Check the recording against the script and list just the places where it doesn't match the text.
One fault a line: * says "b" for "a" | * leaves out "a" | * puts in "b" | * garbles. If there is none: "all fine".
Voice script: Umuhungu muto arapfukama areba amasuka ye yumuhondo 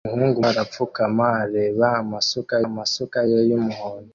* leaves out "muto"
* puts in "amasuka"